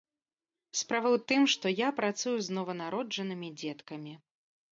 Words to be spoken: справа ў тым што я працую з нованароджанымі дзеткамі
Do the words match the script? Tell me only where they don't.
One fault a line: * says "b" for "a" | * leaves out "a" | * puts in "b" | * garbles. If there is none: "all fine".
all fine